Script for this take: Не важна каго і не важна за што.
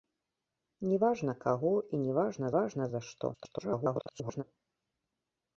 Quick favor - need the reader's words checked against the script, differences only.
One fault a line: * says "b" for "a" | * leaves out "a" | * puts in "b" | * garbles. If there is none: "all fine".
* puts in "важна"
* garbles